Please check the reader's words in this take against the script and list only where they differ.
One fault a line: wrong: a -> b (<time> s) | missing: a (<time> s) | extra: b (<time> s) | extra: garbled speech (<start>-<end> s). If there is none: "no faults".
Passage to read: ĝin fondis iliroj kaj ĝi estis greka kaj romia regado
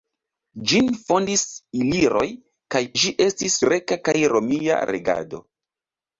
no faults